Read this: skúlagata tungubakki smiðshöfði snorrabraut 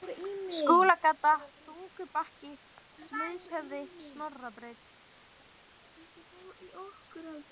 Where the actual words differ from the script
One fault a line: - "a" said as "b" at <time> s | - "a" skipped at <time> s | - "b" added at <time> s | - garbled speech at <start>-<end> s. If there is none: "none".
none